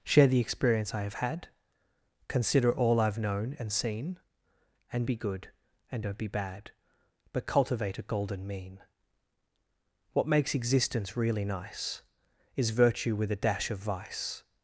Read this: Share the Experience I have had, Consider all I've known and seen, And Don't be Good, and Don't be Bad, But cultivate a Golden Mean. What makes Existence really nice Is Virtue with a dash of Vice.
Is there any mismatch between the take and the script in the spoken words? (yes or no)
yes